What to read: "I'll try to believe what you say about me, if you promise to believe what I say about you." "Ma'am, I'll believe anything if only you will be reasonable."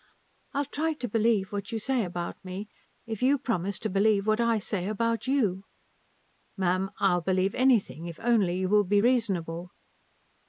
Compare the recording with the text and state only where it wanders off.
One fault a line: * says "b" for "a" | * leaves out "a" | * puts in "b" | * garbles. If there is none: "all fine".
all fine